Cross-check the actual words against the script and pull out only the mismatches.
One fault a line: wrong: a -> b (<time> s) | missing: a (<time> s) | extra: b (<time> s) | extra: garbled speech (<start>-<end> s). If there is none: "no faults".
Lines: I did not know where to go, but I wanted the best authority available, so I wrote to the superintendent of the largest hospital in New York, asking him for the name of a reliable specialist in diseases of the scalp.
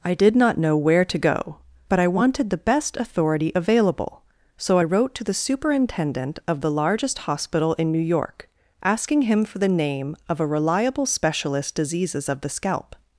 missing: in (11.8 s)